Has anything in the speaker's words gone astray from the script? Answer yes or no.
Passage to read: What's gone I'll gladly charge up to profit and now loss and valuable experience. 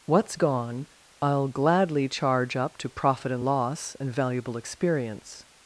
yes